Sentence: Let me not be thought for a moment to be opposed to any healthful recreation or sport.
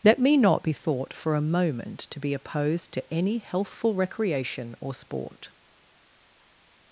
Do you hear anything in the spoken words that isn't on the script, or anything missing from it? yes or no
no